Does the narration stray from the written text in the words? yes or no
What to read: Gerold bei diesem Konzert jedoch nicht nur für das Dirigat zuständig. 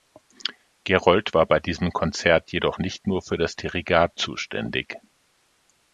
yes